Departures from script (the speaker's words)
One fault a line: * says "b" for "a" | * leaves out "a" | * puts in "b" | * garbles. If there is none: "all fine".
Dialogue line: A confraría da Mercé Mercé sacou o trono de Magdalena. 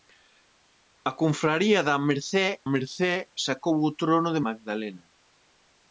all fine